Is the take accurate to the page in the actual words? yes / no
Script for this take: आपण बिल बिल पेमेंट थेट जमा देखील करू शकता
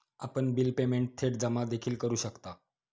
no